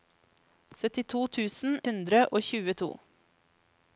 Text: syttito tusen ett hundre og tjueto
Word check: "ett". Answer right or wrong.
wrong